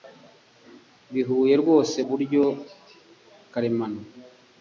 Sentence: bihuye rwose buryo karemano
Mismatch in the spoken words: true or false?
false